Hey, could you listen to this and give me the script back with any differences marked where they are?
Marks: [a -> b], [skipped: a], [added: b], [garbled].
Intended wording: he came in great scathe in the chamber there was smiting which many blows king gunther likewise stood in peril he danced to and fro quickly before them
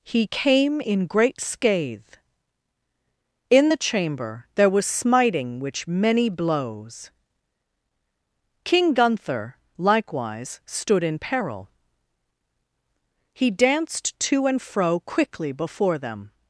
he came in great scathe in the chamber there was smiting which many blows king gunther likewise stood in peril he danced to and fro quickly before them